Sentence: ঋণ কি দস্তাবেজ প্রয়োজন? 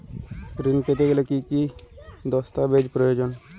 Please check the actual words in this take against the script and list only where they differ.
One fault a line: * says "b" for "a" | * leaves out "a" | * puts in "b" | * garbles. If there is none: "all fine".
* puts in "পেতে গেলে কি"